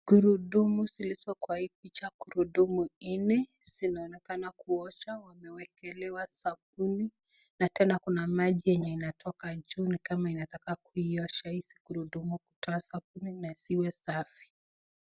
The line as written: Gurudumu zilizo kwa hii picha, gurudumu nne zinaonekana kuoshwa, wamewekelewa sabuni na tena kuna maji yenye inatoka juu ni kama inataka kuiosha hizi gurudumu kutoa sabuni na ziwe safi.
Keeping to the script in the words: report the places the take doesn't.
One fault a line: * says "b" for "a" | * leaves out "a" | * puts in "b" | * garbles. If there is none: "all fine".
all fine